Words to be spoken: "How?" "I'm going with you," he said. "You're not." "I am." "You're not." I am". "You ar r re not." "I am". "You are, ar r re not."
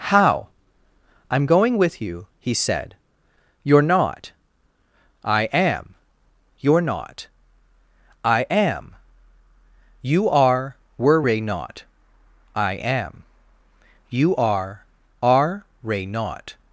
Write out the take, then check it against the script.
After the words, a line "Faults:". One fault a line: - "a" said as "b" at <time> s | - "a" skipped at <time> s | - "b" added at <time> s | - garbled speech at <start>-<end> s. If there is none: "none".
"How?" "I'm going with you," he said. "You're not." "I am." "You're not." I am". "You are were ray not." "I am". "You are, are ray not."
Faults:
- "ar r re" said as "are were ray" at 10.3 s
- "ar r re" said as "are ray" at 15.2 s